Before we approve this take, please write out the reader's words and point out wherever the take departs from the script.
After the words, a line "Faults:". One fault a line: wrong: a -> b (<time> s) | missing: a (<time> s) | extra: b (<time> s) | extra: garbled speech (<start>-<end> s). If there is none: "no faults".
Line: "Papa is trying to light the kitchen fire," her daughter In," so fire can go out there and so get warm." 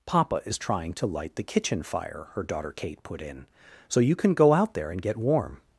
"Papa is trying to light the kitchen fire," her daughter Kate put in," so you can go out there and get warm."
Faults:
extra: Kate put (2.7 s)
wrong: fire -> you (4.0 s)
missing: so (5.0 s)